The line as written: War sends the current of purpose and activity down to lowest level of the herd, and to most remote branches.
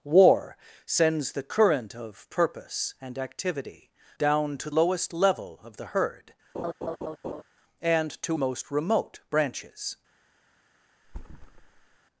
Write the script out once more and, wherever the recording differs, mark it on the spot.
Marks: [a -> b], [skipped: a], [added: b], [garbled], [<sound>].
War sends the current of purpose and activity down to lowest level of the herd, [laugh] and to most remote branches. [thud]